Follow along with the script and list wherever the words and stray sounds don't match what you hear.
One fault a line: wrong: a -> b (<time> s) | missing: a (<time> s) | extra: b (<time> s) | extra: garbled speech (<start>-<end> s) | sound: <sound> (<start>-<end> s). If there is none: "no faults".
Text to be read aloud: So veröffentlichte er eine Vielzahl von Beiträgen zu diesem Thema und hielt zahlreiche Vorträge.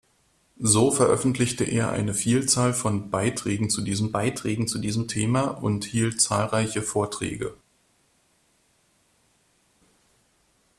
extra: Beiträgen zu diesem (4.1 s)